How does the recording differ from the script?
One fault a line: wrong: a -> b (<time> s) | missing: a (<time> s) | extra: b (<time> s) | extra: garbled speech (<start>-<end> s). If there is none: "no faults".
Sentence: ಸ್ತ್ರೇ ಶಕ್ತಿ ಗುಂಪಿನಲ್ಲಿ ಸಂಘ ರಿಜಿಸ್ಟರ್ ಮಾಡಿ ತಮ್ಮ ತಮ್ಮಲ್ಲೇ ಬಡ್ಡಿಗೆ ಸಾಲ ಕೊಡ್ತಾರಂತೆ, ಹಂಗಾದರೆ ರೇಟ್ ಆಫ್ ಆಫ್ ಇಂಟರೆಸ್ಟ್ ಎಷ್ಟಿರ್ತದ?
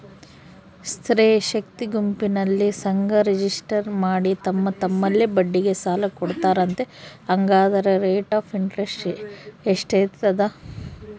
missing: ಆಫ್ (8.5 s)